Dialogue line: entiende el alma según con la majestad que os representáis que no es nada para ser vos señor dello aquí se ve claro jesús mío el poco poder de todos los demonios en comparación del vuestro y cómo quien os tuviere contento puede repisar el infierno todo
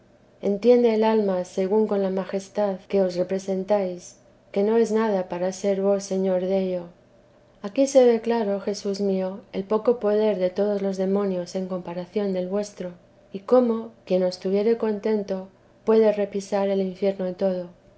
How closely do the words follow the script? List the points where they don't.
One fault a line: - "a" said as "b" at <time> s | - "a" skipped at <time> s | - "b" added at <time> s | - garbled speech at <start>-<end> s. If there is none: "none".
none